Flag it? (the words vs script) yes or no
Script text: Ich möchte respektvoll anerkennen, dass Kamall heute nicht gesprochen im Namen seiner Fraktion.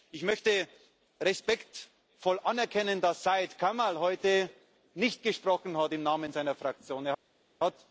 yes